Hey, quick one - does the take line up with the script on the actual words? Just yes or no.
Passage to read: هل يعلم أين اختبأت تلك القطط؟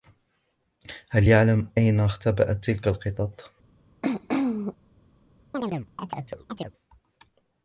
yes